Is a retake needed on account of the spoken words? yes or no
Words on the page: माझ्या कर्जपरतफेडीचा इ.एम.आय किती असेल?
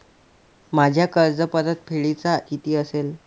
yes